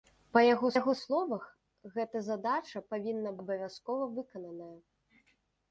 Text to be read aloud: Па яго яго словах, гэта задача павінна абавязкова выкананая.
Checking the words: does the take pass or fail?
pass